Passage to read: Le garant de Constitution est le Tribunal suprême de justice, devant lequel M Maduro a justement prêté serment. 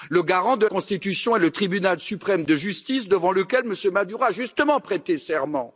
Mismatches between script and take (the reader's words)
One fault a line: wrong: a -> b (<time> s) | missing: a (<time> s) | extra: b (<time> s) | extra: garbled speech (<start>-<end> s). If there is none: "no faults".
no faults